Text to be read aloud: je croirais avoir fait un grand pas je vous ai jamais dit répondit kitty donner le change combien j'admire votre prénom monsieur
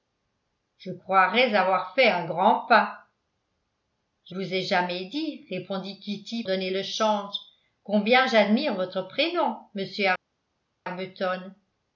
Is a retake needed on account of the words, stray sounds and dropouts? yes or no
no